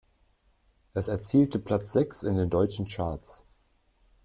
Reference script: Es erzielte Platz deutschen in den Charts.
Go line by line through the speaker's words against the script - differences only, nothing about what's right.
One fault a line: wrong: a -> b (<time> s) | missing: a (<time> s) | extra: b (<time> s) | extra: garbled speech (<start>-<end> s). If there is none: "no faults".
wrong: deutschen -> sechs (1.9 s)
extra: deutschen (2.5 s)